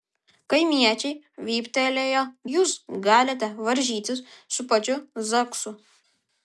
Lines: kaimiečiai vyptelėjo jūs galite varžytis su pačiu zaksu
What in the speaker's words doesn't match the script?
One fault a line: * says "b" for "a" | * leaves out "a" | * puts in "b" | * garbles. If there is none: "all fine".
all fine